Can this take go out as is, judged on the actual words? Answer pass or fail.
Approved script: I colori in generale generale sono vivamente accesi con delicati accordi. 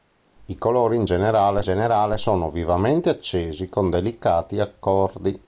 pass